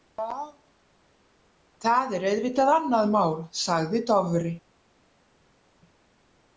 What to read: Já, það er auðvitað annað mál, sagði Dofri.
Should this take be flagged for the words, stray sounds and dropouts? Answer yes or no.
no